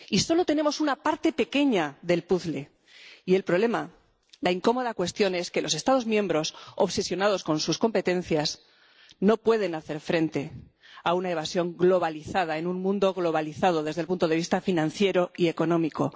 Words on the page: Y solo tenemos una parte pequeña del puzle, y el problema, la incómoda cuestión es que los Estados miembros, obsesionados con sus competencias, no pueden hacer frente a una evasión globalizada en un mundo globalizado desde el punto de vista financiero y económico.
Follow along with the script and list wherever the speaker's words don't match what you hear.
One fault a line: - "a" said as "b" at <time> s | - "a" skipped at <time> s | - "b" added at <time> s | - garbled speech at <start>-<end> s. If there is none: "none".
none